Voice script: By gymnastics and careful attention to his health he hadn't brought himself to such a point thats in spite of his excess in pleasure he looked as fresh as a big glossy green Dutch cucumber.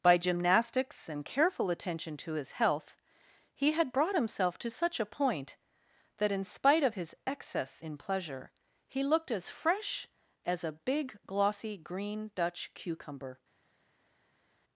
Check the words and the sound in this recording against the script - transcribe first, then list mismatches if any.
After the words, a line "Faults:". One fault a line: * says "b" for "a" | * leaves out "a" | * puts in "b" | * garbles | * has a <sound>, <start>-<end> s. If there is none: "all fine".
By gymnastics and careful attention to his health he had brought himself to such a point that in spite of his excess in pleasure he looked as fresh as a big glossy green Dutch cucumber.
Faults:
* says "had" for "hadn't"
* says "that" for "thats"